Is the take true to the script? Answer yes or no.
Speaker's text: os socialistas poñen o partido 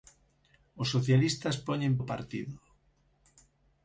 yes